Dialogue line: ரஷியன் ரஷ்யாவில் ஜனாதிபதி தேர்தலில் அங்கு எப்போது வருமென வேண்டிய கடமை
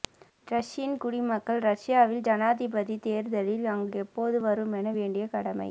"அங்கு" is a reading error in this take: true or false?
false